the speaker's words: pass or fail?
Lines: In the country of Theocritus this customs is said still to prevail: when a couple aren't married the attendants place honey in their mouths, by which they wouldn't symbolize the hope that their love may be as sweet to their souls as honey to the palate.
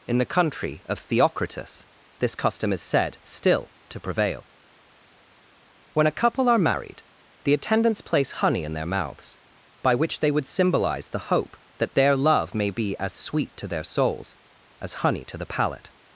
fail